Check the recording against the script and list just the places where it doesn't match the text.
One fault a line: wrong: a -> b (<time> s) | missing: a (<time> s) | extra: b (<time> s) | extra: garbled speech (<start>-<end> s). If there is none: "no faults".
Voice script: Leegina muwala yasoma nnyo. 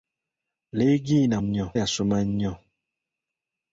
wrong: muwala -> nnyo (1.4 s)